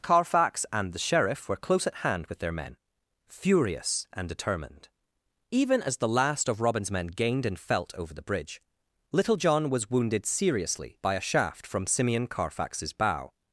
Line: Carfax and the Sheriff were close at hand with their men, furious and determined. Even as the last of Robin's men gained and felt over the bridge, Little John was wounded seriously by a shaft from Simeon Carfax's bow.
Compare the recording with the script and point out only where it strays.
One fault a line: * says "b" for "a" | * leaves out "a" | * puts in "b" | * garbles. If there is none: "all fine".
all fine